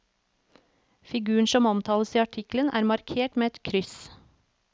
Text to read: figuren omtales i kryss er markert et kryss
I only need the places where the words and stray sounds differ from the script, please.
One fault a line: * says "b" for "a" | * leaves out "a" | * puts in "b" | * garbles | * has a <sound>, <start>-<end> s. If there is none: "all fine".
* puts in "som"
* says "artikkelen" for "kryss"
* puts in "med"